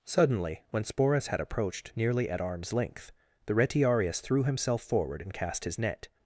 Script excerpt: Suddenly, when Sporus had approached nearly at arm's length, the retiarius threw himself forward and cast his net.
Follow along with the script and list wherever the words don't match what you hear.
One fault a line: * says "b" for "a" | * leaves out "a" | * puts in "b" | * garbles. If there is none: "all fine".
all fine